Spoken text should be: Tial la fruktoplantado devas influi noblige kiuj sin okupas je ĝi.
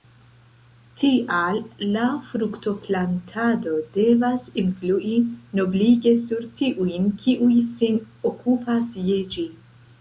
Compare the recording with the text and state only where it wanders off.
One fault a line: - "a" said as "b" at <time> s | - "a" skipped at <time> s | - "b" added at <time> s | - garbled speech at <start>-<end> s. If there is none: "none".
- "sur tiujn" added at 6.3 s